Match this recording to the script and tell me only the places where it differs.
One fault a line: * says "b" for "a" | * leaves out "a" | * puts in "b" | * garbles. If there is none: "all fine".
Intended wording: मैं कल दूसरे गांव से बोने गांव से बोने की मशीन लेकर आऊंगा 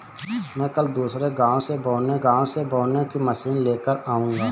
all fine